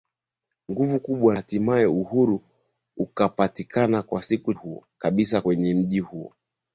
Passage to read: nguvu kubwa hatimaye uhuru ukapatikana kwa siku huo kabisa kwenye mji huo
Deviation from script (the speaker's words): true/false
false